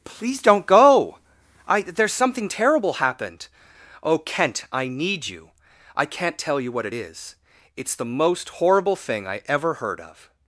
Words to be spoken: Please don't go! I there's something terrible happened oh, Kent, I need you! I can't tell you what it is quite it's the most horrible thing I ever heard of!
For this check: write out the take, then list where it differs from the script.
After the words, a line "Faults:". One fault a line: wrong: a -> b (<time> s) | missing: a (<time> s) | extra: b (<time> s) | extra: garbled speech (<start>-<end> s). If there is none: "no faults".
Please don't go! I there's something terrible happened oh, Kent, I need you! I can't tell you what it is it's the most horrible thing I ever heard of!
Faults:
missing: quite (7.3 s)